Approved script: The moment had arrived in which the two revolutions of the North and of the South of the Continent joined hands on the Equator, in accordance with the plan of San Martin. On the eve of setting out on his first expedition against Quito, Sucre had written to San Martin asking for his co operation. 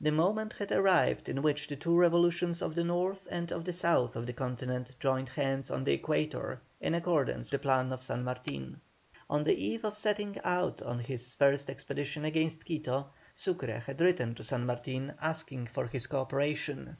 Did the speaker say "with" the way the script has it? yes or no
no